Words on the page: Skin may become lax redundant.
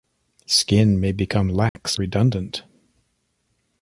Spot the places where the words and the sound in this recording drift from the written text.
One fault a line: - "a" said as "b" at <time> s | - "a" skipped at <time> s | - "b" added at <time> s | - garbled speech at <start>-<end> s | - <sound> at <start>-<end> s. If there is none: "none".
- dropout at 1.7-1.8 s